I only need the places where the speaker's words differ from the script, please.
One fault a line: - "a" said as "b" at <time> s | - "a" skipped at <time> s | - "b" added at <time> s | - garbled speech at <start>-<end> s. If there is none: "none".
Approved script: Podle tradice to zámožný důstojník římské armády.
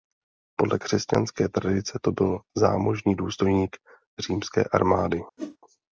- "křesťanské" added at 0.8 s
- "byl" added at 2.1 s